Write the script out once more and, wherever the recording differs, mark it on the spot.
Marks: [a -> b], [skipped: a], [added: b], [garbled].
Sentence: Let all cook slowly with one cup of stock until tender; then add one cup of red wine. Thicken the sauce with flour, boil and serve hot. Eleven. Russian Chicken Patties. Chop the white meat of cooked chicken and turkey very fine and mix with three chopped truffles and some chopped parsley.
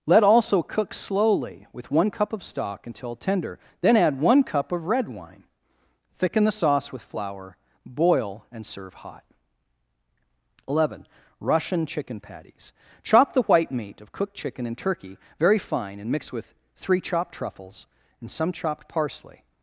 Let [all -> also] cook slowly with one cup of stock until tender; then add one cup of red wine. Thicken the sauce with flour, boil and serve hot. Eleven. Russian Chicken Patties. Chop the white meat of cooked chicken and turkey very fine and mix with three chopped truffles and some chopped parsley.